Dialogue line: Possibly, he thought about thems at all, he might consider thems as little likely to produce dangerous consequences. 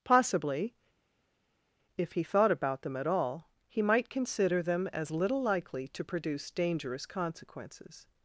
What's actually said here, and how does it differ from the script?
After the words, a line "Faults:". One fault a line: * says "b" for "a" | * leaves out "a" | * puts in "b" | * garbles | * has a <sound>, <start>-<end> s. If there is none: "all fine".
Possibly, if he thought about them at all, he might consider them as little likely to produce dangerous consequences.
Faults:
* puts in "if"
* says "them" for "thems"
* says "them" for "thems"